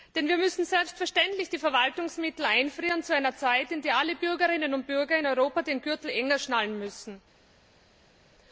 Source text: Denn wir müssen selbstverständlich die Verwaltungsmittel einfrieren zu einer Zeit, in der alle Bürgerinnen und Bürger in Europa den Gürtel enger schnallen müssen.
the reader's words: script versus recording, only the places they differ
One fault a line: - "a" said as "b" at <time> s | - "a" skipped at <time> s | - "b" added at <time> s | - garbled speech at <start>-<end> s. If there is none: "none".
none